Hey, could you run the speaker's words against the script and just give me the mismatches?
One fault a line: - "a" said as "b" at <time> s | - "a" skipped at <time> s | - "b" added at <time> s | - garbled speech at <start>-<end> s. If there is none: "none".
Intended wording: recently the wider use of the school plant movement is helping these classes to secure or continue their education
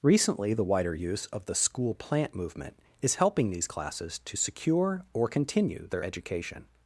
none